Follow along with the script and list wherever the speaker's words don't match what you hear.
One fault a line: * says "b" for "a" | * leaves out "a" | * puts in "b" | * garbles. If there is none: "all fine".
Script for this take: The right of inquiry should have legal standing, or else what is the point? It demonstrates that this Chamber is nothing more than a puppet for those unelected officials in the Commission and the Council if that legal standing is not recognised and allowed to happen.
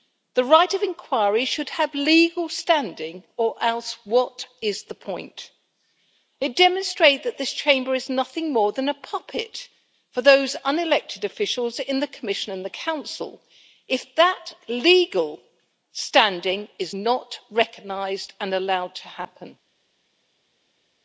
all fine